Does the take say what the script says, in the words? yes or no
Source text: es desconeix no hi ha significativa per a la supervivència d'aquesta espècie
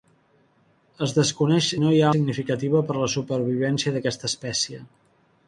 yes